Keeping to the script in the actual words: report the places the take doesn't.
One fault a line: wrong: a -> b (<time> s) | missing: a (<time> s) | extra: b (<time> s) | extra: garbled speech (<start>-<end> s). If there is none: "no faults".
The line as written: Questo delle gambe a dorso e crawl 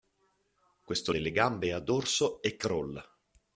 no faults